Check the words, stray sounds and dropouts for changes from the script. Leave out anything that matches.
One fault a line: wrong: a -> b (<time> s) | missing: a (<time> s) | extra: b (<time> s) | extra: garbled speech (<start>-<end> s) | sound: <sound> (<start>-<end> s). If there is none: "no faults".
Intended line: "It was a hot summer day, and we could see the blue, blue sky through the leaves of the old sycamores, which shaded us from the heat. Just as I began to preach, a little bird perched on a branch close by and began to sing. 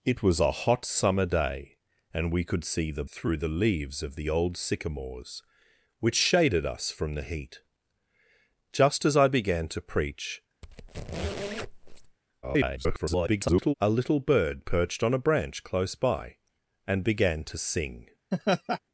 missing: blue blue sky (3.0 s)
sound: squeak (10.6-12.2 s)
extra: garbled speech (12.4-13.7 s)
sound: laugh (18.3-18.8 s)